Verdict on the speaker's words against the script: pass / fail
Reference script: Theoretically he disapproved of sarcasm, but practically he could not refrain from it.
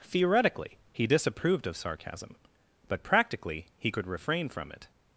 fail